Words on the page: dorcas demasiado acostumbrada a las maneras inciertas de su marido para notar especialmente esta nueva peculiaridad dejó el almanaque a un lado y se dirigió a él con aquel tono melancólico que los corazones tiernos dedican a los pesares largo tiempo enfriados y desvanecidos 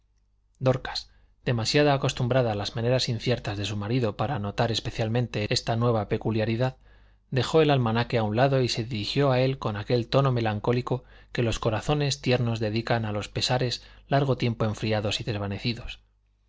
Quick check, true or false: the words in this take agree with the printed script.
true